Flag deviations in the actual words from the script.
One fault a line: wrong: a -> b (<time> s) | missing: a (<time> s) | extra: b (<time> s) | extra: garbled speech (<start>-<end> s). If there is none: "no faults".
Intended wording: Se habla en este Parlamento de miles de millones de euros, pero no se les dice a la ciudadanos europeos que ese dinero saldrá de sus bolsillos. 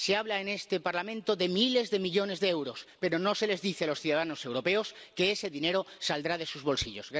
wrong: la -> los (3.9 s)